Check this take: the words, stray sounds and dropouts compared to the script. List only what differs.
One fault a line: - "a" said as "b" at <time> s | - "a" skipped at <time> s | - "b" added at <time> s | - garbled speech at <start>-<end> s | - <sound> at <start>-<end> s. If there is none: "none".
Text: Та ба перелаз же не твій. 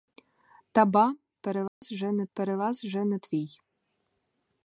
- dropout at 1.7-1.8 s
- "перелаз же не" added at 2.3 s